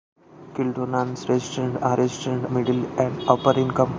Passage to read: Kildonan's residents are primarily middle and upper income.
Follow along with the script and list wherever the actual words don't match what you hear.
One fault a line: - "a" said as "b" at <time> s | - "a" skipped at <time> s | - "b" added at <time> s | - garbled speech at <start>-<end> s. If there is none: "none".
- "primarily" said as "residents" at 2.0 s